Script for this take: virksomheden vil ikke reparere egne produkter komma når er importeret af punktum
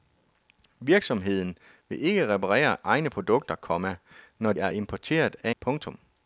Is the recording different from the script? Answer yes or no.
no